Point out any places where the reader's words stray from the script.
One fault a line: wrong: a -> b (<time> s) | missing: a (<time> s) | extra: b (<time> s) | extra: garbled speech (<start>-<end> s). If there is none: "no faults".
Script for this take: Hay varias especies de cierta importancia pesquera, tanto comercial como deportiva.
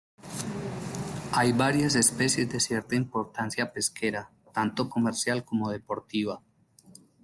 no faults